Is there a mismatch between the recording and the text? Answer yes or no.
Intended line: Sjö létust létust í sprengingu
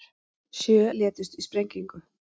yes